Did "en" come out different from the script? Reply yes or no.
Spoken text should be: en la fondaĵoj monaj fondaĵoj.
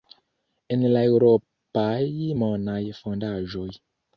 no